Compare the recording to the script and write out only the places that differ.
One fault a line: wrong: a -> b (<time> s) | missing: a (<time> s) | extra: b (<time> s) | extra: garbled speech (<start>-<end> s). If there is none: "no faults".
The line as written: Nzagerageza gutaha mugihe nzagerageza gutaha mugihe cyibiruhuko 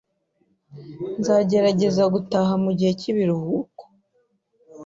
missing: nzagerageza gutaha mugihe (2.9 s)